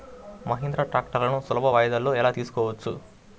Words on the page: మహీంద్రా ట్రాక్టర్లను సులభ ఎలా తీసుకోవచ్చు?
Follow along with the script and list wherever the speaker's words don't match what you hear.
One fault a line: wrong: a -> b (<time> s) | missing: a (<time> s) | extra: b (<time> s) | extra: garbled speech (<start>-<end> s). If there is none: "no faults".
extra: వాయిదాలలో (1.7 s)